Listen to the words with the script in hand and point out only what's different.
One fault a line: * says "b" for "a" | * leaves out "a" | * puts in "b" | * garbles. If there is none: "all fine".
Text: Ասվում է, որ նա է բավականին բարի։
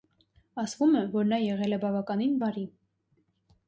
* puts in "եղել"